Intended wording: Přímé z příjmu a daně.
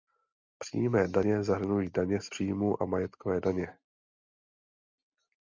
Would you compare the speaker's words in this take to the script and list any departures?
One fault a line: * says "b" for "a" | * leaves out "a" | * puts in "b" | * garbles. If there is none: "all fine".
* puts in "daně zahrnují daně"
* puts in "majetkové"